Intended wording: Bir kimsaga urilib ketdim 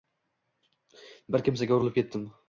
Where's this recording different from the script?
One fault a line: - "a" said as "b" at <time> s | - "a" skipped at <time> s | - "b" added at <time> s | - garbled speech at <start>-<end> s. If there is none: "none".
none